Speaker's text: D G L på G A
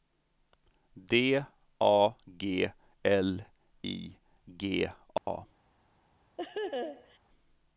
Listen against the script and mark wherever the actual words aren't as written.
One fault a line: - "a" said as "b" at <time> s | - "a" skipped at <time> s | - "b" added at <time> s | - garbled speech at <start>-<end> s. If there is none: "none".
- "A" added at 1.8 s
- "på" said as "I" at 3.8 s